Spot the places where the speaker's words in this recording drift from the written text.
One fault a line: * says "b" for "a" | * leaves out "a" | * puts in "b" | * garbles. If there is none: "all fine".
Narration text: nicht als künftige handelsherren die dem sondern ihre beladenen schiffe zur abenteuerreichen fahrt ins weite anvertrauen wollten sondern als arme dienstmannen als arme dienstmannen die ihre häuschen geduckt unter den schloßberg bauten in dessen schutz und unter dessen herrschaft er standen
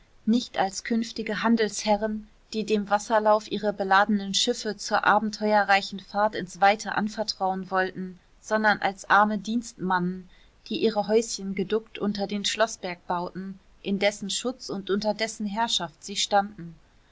* says "wasserlauf" for "sondern"
* leaves out "als arme dienstmannen"
* says "sie" for "er"